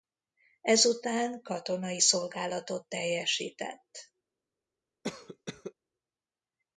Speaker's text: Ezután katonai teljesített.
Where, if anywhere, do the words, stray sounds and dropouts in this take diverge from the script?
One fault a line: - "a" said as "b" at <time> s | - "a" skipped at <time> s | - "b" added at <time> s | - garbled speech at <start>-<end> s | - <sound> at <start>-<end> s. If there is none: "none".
- "szolgálatot" added at 2.0 s
- cough at 5.0-5.7 s